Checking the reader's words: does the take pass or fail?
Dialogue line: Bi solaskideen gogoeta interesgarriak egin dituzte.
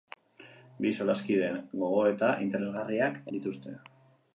fail